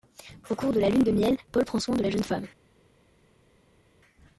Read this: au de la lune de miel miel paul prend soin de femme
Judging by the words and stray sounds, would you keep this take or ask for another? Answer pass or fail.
fail